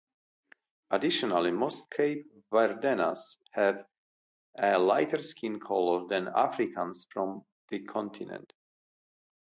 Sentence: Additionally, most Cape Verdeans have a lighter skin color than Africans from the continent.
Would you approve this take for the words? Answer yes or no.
yes